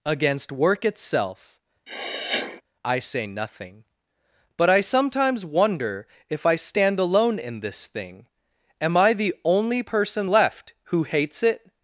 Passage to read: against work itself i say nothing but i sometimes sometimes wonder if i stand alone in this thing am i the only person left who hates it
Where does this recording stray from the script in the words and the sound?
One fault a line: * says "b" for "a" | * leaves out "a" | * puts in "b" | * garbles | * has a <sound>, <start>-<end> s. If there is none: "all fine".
* has a sniff, 1.9-2.6 s
* leaves out "sometimes"